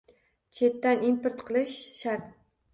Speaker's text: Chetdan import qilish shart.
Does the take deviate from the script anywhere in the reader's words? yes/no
no